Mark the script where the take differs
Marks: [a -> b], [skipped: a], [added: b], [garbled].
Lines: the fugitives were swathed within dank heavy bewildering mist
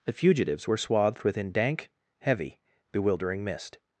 the fugitives were swathed within dank heavy bewildering mist